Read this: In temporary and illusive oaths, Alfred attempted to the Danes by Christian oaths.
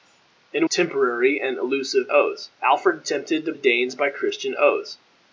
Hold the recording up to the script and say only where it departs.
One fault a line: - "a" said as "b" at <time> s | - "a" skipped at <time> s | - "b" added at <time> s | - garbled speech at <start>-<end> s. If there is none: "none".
none